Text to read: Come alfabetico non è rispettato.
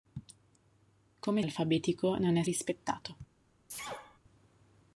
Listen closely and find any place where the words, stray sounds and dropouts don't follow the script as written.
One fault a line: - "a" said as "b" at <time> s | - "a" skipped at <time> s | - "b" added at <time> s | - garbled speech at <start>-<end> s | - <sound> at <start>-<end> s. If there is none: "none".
- sneeze at 3.7-4.2 s